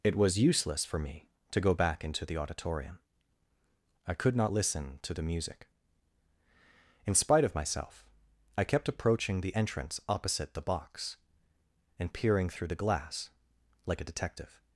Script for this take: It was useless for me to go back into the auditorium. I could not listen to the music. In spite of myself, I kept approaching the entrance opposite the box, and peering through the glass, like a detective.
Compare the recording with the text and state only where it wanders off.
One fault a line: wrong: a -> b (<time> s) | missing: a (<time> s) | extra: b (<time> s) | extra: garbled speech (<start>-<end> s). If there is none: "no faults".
no faults